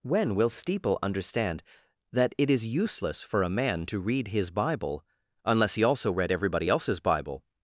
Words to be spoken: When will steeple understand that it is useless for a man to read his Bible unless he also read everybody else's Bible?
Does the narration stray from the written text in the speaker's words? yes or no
no